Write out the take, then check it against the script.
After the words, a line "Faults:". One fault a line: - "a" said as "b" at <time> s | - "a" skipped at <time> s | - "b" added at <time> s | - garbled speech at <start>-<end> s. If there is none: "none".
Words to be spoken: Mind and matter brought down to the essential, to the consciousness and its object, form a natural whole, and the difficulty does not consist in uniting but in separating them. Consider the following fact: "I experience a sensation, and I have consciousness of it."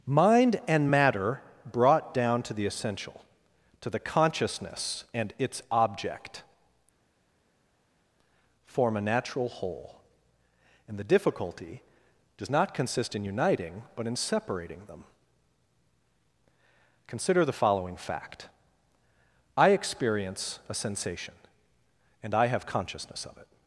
Mind and matter brought down to the essential, to the consciousness and its object, form a natural whole, and the difficulty does not consist in uniting but in separating them. Consider the following fact: "I experience a sensation, and I have consciousness of it."
Faults:
none